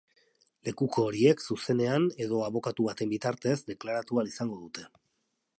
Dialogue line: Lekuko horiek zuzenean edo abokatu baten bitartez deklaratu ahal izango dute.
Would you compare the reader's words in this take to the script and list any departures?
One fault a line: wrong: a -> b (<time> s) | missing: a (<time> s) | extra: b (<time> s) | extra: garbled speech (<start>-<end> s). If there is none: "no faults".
no faults